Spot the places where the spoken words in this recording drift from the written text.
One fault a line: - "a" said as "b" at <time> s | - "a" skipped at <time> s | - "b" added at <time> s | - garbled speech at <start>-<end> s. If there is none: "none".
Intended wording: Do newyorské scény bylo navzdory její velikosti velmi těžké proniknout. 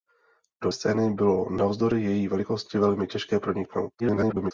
- "newyorské" skipped at 0.7 s
- garbled speech at 4.0-4.5 s